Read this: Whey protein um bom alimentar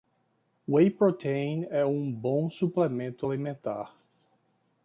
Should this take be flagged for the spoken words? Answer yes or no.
yes